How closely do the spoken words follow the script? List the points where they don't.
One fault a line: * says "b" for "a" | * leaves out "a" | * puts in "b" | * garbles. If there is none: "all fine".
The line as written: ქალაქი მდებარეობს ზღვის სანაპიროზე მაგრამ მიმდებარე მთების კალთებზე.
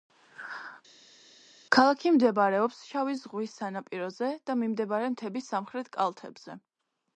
* puts in "შავი"
* says "და" for "მაგრამ"
* puts in "სამხრეთ"